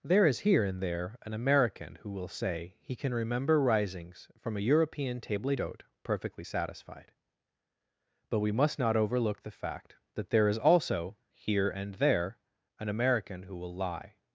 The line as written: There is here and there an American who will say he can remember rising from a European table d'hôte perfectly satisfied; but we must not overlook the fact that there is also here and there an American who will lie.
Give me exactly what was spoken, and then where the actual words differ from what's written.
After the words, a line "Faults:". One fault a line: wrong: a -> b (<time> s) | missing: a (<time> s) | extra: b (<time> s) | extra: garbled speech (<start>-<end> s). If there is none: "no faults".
There is here and there an American who will say he can remember risings from a European table d'hôte perfectly satisfied; but we must not overlook the fact that there is also here and there an American who will lie.
Faults:
wrong: rising -> risings (3.6 s)